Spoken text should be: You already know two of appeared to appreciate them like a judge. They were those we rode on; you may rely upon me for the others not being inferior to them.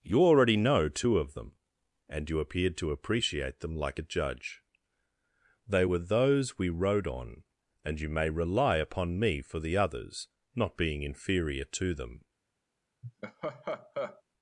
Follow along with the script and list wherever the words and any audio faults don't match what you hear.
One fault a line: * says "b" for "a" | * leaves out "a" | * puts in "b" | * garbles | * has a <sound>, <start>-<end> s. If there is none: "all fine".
* puts in "them and you"
* puts in "and"
* has a laugh, 13.0-14.2 s